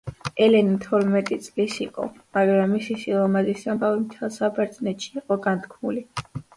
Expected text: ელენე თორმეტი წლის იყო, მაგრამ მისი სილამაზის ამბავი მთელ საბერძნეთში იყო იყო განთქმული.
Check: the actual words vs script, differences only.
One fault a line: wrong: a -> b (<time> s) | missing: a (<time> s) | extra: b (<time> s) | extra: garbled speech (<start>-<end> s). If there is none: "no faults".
missing: იყო (5.4 s)